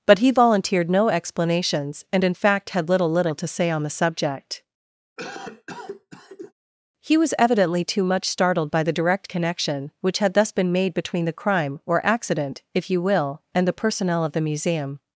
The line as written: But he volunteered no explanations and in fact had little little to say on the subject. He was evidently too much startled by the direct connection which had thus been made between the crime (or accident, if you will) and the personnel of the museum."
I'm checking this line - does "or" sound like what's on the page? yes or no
yes